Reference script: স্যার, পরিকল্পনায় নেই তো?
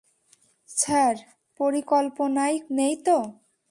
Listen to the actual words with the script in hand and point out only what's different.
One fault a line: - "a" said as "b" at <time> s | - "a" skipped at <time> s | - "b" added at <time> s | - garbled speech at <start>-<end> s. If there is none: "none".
none